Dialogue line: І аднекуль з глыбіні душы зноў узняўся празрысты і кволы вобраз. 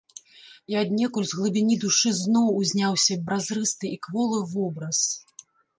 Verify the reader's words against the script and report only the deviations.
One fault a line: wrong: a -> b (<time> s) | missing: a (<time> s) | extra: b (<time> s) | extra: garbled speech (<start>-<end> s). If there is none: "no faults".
no faults